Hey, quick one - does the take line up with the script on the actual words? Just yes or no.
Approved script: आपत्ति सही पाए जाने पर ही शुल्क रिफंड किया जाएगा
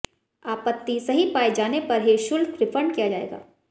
yes